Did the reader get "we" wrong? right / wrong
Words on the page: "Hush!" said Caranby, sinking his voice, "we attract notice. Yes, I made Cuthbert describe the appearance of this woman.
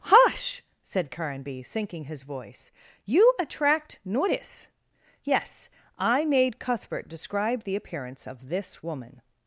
wrong